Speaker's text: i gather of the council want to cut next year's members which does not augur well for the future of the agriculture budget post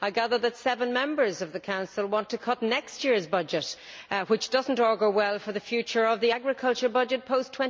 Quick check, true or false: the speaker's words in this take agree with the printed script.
false